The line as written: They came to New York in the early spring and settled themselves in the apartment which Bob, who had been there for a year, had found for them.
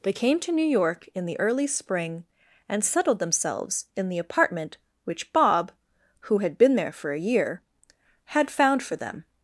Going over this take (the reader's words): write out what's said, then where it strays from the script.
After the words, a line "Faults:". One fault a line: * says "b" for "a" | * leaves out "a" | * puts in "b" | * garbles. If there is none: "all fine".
They came to New York in the early spring and settled themselves in the apartment which Bob, who had been there for a year, had found for them.
Faults:
all fine